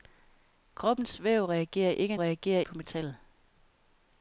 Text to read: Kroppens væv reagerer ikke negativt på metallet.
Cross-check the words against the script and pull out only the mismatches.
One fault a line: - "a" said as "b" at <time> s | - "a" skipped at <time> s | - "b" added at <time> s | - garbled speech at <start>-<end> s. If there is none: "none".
- "negativt" said as "reagerer" at 2.2 s